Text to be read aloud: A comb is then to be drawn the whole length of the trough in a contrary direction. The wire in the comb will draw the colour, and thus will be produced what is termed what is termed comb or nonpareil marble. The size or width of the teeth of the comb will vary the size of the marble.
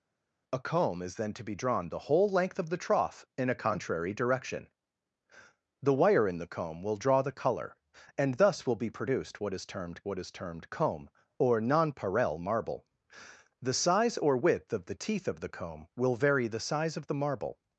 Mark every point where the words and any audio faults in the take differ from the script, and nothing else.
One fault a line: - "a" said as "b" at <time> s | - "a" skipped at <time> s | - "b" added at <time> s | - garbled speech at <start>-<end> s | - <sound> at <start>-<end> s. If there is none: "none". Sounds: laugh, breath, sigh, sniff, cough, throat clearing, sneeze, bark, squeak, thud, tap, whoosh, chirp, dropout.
none